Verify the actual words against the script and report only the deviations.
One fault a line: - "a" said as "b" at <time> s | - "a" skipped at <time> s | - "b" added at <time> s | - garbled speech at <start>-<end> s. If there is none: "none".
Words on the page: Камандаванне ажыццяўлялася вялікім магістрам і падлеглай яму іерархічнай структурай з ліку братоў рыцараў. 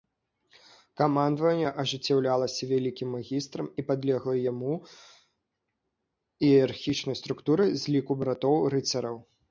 none